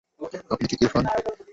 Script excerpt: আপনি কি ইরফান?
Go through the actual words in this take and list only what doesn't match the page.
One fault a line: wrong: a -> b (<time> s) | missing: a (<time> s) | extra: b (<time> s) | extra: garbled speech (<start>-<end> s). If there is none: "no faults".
no faults